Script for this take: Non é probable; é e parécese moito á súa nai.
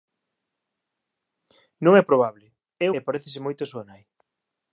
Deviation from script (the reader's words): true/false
false